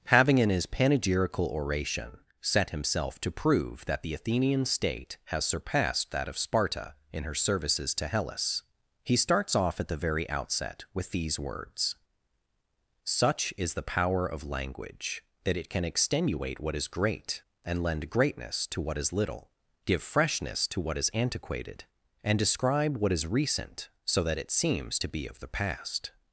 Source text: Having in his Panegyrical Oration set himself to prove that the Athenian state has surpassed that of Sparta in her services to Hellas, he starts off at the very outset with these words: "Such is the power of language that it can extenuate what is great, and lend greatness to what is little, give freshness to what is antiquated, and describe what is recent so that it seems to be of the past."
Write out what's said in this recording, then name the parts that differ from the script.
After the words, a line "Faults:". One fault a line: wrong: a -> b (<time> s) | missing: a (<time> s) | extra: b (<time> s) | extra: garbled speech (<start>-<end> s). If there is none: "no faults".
Having in his Panegyrical Oration set himself to prove that the Athenian state has surpassed that of Sparta in her services to Hellas, he starts off at the very outset with these words: "Such is the power of language that it can extenuate what is great, and lend greatness to what is little, give freshness to what is antiquated, and describe what is recent so that it seems to be of the past."
Faults:
no faults